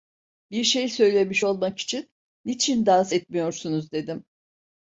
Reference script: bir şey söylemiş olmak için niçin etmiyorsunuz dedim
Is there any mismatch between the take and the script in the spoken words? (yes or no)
yes